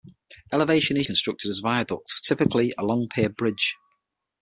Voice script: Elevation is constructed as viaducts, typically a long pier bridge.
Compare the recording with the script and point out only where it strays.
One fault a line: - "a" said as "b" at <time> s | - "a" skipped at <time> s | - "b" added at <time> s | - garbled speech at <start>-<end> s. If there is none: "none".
none